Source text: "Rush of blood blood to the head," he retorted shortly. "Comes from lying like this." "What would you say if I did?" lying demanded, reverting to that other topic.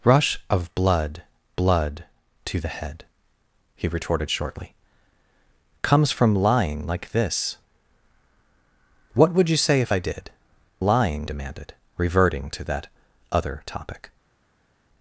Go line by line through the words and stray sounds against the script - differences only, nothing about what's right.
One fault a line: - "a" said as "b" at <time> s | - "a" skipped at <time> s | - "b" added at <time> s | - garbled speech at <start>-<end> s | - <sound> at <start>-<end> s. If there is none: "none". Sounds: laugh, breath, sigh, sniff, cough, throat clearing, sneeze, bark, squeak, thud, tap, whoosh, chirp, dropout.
none